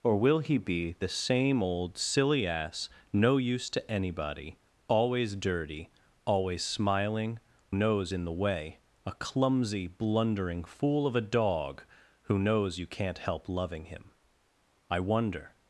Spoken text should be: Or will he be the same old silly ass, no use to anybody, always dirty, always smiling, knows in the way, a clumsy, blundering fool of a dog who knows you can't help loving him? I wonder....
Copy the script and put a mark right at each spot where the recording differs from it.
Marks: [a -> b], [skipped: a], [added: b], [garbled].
Or will he be the same old silly ass, no use to anybody, always dirty, always smiling, knows in the way, a clumsy, blundering fool of a dog who knows you can't help loving him? I wonder....